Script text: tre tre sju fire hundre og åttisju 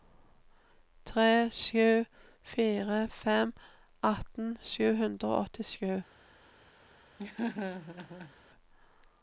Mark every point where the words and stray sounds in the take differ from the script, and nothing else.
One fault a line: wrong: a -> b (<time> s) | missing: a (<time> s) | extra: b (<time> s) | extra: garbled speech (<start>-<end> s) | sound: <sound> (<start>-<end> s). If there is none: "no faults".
missing: tre (1.5 s)
extra: fem atten sju (3.2 s)
sound: laugh (7.2-8.3 s)